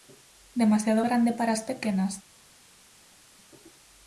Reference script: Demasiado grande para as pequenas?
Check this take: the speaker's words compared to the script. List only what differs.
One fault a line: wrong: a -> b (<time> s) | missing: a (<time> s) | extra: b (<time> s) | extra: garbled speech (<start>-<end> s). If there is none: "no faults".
no faults